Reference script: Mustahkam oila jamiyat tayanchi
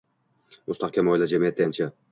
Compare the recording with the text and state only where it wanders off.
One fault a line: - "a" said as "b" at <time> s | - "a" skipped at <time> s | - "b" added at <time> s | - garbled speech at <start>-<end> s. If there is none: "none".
none